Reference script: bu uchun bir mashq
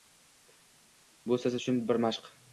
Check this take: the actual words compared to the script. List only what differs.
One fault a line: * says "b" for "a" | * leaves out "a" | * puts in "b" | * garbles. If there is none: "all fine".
* puts in "siz"